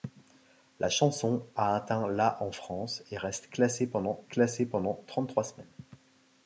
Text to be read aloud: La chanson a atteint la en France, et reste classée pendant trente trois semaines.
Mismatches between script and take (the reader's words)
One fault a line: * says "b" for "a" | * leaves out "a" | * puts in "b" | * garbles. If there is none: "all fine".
* puts in "classée pendant"